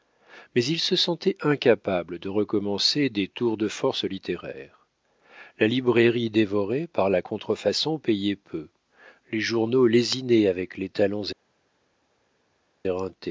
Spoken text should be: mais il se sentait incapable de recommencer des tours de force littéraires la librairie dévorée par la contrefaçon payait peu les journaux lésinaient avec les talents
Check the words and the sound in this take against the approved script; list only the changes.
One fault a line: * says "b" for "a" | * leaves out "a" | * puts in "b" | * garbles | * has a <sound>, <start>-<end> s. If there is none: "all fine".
all fine